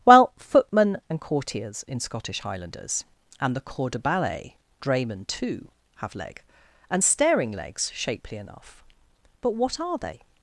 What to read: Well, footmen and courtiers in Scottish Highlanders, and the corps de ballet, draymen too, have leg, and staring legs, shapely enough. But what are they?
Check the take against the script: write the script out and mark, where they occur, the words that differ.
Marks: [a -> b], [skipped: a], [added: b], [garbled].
Well, footmen and courtiers in Scottish Highlanders, and the corps de ballet, draymen too, have leg, and staring legs, shapely enough. But what are they?